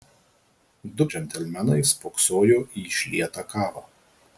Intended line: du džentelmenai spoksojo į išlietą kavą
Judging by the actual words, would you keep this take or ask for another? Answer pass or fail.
pass